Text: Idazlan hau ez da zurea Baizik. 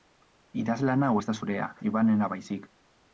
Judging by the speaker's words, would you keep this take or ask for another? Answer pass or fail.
fail